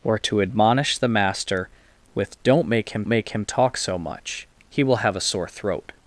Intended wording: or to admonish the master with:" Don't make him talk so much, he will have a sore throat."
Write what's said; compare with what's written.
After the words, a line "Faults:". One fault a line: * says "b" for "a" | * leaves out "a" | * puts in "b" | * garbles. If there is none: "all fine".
or to admonish the master with:" Don't make him make him talk so much, he will have a sore throat."
Faults:
* puts in "make him"